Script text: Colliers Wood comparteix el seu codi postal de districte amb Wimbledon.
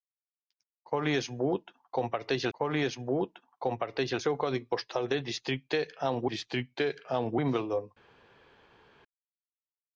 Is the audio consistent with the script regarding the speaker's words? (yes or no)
no